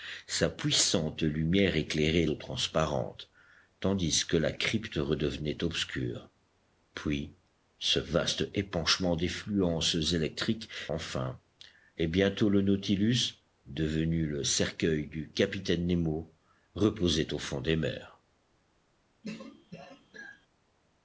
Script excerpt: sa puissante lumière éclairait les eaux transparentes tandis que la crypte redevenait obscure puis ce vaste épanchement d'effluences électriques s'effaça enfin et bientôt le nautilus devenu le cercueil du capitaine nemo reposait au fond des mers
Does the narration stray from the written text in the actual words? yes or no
yes